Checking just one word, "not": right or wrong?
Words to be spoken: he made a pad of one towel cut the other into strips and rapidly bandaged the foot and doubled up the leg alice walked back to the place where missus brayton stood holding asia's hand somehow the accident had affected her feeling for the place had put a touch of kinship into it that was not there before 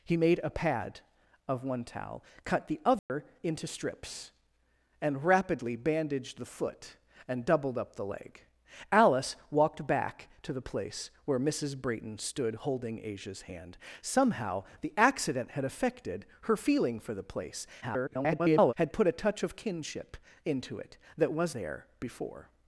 wrong